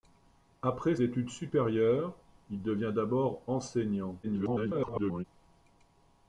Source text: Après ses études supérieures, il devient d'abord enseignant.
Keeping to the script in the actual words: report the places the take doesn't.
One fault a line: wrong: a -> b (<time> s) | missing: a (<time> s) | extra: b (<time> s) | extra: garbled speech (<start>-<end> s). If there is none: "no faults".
missing: ses (0.9 s)
extra: garbled speech (4.2-5.2 s)